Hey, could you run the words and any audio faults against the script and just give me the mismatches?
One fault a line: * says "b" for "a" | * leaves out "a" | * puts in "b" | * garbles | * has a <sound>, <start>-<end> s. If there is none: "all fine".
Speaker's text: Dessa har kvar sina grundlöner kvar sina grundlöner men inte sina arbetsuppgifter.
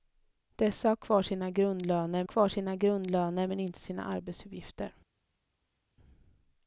all fine